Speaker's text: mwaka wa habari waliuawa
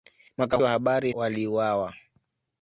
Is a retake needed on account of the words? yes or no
no